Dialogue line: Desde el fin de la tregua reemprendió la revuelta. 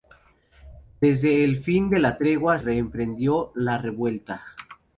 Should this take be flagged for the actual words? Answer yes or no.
no